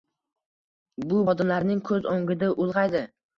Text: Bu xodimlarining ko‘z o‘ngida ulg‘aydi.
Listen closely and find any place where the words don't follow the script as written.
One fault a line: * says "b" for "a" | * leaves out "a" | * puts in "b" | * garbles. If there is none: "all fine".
all fine